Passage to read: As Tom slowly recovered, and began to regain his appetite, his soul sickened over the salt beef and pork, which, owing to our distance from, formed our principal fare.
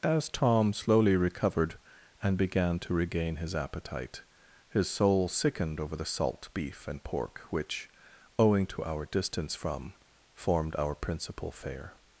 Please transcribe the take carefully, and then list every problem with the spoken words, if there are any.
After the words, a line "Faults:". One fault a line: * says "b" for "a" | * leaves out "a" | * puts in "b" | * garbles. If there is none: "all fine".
As Tom slowly recovered, and began to regain his appetite, his soul sickened over the salt beef and pork, which, owing to our distance from, formed our principal fare.
Faults:
all fine